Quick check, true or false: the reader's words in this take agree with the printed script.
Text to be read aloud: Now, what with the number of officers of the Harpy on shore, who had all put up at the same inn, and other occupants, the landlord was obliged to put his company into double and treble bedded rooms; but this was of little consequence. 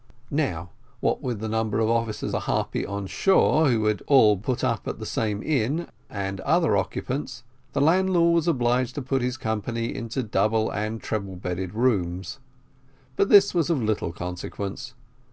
false